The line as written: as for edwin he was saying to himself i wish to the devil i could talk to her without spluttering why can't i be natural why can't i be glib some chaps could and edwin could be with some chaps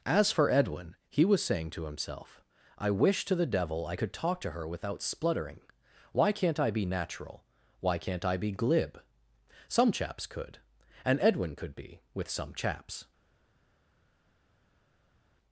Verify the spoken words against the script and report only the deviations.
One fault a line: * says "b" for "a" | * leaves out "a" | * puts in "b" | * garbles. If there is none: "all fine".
all fine